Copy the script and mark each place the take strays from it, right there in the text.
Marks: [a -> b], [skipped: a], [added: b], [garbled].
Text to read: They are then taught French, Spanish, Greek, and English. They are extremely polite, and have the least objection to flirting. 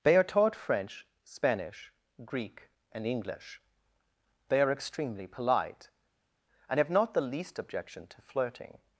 They are [skipped: then] taught French, Spanish, Greek, and English. They are extremely polite, and have [added: not] the least objection to flirting.